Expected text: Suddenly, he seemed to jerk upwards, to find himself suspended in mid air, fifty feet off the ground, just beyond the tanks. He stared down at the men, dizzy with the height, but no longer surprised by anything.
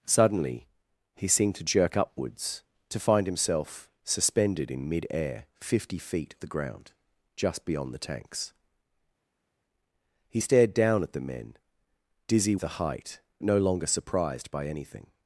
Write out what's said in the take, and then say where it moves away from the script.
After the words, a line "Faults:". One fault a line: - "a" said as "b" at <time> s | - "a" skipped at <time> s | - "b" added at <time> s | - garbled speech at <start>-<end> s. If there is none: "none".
Suddenly, he seemed to jerk upwards, to find himself suspended in mid air, fifty feet the ground, just beyond the tanks. He stared down at the men, dizzy the height, no longer surprised by anything.
Faults:
- "off" skipped at 6.3 s
- "with" skipped at 12.6 s
- "but" skipped at 13.2 s